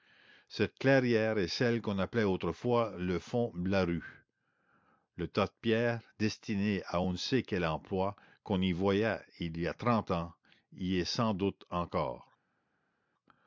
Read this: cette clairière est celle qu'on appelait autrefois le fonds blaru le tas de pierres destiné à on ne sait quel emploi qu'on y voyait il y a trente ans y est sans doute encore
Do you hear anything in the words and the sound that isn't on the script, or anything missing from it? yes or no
no